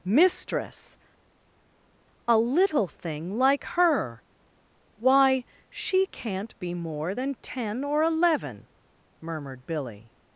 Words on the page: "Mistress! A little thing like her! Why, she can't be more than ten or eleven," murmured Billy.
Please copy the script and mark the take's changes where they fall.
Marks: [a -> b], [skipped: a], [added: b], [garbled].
"Mistress! A little thing like her! Why, she can't be more than ten or eleven," murmured Billy.